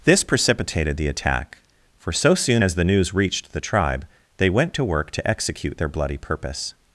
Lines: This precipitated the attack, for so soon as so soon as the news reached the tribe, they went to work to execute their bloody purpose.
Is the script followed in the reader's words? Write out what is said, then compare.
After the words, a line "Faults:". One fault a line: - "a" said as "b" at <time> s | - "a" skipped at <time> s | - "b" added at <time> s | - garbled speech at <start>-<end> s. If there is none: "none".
This precipitated the attack, for so soon as the news reached the tribe, they went to work to execute their bloody purpose.
Faults:
- "so soon as" skipped at 2.7 s